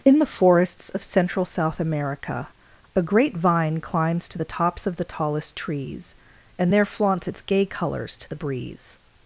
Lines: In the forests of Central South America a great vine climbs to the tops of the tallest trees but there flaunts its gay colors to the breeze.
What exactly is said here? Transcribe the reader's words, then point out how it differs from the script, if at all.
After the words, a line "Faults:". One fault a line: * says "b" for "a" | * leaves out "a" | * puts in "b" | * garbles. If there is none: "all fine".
In the forests of Central South America a great vine climbs to the tops of the tallest trees and there flaunts its gay colors to the breeze.
Faults:
* says "and" for "but"